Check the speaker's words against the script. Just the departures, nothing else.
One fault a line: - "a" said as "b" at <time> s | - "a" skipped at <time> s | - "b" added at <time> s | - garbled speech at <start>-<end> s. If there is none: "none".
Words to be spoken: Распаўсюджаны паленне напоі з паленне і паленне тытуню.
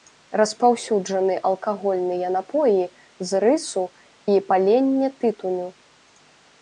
- "паленне" said as "алкагольныя" at 1.5 s
- "паленне" said as "рысу" at 3.4 s